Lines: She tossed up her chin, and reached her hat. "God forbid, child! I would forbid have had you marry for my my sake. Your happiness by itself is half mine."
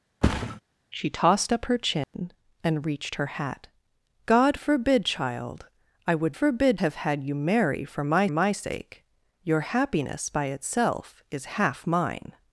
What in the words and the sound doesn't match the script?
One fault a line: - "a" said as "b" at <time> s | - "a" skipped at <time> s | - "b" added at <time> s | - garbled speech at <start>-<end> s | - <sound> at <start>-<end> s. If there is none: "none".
- thud at 0.2-0.6 s
- dropout at 2.0-2.1 s